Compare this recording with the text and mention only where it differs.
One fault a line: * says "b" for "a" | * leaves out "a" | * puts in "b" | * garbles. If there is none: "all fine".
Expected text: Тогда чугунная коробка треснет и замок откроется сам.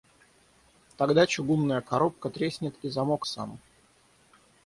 * leaves out "откроется"